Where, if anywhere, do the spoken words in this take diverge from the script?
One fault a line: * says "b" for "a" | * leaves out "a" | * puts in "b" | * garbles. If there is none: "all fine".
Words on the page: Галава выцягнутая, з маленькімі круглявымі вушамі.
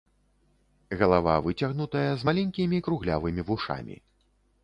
all fine